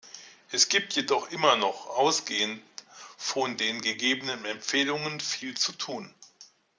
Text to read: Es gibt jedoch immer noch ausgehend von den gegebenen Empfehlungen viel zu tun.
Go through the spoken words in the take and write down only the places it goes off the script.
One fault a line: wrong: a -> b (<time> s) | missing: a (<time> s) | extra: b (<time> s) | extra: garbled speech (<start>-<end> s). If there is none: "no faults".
no faults